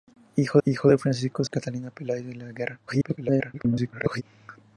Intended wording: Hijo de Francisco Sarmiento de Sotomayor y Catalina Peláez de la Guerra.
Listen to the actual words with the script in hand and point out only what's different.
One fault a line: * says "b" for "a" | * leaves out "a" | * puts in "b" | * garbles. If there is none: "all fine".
* puts in "hijo"
* leaves out "Sarmiento de Sotomayor"
* garbles